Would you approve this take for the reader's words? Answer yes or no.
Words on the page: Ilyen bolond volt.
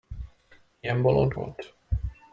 yes